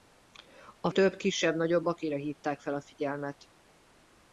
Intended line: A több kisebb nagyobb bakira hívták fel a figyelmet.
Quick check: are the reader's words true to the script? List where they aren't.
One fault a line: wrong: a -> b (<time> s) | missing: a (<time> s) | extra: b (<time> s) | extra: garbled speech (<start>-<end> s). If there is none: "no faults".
no faults